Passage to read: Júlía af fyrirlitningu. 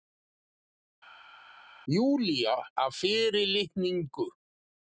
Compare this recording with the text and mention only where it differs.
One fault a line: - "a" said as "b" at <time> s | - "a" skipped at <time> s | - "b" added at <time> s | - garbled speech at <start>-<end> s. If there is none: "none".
none